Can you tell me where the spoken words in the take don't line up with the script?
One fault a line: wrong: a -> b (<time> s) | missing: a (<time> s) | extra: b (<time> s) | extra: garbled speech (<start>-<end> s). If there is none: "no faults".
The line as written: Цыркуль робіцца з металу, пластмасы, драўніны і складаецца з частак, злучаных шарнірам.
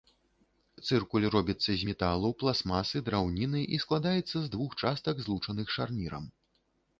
extra: двух (4.5 s)